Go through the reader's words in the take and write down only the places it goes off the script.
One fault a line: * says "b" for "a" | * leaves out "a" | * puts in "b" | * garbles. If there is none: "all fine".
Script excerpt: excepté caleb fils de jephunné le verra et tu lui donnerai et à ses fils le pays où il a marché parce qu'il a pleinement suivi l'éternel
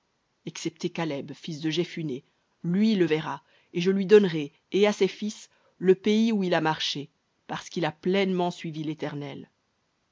* puts in "lui"
* says "je" for "tu"